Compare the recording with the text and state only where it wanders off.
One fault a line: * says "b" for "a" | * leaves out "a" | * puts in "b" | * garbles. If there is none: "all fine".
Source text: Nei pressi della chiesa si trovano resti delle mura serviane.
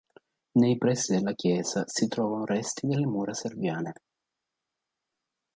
all fine